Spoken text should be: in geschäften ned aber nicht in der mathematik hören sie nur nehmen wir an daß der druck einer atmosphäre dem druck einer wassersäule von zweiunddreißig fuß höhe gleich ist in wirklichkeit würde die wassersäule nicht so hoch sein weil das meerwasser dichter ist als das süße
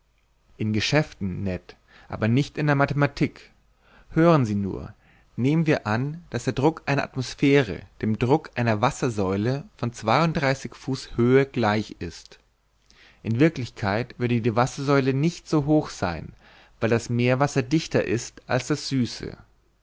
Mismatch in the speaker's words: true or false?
false